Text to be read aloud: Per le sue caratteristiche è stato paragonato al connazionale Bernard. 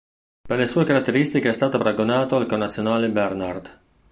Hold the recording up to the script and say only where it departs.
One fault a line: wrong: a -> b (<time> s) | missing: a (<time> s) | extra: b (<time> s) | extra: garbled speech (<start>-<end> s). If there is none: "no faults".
no faults